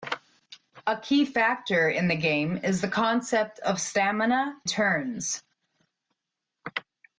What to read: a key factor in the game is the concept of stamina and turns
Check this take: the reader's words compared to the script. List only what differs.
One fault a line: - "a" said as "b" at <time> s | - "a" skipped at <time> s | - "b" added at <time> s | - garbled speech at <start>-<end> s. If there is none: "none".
- "and" skipped at 4.6 s